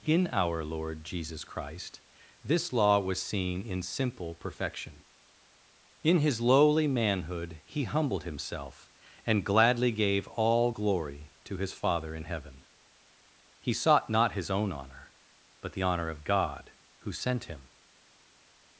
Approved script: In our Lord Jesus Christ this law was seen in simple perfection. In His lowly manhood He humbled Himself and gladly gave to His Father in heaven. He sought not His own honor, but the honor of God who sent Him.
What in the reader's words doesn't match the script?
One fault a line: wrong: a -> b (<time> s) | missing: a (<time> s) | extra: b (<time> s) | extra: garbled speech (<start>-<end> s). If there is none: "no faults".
extra: all glory (10.3 s)